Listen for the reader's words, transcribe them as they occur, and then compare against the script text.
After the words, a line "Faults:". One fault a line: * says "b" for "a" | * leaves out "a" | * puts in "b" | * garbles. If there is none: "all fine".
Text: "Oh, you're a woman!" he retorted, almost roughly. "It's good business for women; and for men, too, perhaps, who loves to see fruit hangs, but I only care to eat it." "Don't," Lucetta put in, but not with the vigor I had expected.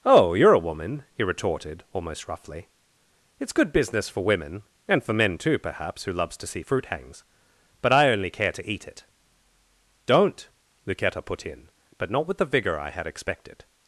"Oh, you're a woman!" he retorted, almost roughly. "It's good business for women; and for men, too, perhaps, who loves to see fruit hangs, but I only care to eat it." "Don't," Lucetta put in, but not with the vigor I had expected.
Faults:
all fine